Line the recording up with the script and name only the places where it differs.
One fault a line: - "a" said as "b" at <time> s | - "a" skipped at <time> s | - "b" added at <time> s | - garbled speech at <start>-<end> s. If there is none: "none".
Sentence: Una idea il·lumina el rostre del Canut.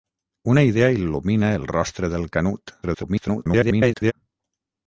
- garbled speech at 2.8-4.1 s